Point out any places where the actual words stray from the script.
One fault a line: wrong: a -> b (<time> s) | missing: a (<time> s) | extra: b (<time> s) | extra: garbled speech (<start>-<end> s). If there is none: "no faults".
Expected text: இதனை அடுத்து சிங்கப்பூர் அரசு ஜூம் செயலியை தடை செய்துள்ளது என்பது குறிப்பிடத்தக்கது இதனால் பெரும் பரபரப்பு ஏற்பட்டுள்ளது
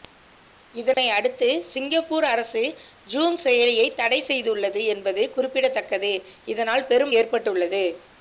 missing: பரபரப்பு (7.2 s)